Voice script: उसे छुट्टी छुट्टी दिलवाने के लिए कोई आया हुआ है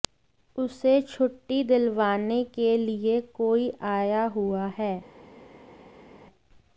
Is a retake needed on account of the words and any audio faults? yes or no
yes